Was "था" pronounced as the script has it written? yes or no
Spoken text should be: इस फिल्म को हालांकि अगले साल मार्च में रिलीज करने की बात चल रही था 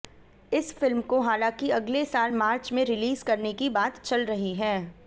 no